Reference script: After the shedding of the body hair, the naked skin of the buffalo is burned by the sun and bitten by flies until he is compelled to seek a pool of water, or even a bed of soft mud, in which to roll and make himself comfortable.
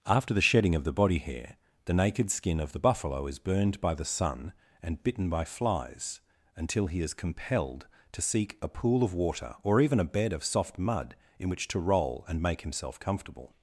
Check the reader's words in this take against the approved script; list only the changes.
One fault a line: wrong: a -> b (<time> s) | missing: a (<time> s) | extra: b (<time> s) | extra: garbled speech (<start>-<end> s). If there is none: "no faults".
no faults